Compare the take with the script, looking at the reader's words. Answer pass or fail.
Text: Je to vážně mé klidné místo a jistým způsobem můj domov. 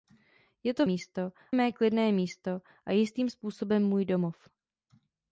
fail